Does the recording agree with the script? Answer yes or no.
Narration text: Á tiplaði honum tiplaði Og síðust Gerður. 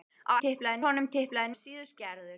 yes